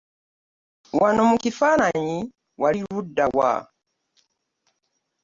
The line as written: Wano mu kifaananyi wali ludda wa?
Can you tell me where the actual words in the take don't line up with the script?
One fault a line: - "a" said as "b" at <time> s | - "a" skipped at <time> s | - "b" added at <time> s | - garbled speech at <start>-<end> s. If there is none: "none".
none